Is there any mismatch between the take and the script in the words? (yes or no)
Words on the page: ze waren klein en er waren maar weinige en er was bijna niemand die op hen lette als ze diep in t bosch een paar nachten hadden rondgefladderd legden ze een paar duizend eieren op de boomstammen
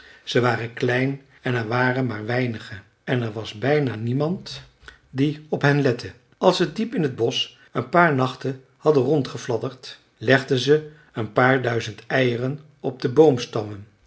no